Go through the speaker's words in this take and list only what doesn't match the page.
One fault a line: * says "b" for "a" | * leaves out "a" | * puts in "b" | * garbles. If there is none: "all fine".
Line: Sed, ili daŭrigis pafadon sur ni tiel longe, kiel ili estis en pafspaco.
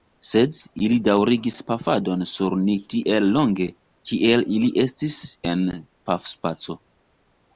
all fine